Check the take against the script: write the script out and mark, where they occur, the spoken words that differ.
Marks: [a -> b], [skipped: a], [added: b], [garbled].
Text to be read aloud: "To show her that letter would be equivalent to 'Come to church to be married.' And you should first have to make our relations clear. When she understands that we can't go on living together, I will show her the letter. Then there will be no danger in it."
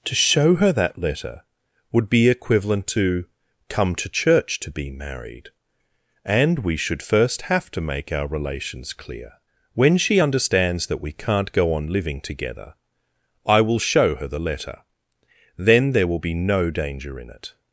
"To show her that letter would be equivalent to 'Come to church to be married.' And [you -> we] should first have to make our relations clear. When she understands that we can't go on living together, I will show her the letter. Then there will be no danger in it."